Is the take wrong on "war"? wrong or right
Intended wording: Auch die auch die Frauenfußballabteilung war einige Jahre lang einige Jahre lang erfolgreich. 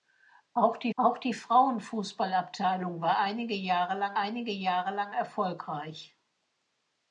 right